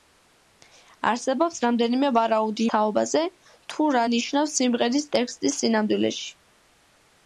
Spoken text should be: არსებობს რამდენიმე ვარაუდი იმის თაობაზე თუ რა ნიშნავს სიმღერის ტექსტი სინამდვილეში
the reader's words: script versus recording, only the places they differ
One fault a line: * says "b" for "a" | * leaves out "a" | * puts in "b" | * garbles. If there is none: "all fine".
* leaves out "იმის"